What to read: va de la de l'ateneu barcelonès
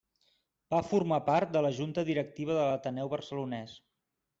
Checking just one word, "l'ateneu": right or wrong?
right